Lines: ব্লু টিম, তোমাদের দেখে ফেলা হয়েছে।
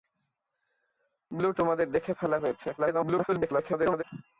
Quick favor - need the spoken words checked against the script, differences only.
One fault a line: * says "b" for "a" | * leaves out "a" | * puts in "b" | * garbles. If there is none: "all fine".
* leaves out "টিম"
* garbles